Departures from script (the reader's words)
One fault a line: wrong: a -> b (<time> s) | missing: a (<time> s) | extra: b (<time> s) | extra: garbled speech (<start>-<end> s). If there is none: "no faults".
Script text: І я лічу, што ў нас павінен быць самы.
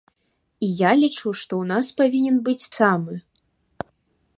no faults